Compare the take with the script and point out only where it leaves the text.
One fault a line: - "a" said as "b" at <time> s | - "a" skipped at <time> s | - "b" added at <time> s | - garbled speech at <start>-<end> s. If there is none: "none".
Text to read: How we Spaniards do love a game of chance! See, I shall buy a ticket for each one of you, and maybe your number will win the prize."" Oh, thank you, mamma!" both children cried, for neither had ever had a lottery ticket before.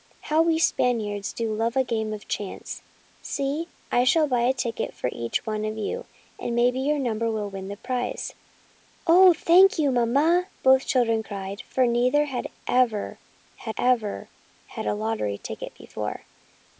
- "ever had" added at 13.7 s